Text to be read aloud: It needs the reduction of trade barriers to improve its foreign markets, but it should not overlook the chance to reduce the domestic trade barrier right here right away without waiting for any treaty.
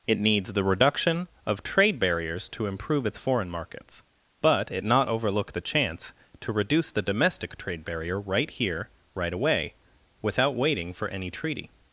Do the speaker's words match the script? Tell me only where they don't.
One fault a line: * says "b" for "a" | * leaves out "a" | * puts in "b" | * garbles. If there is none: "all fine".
* leaves out "should"